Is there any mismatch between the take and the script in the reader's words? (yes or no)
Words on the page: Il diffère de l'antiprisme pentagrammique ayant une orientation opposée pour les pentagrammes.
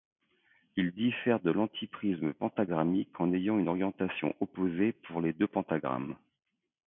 yes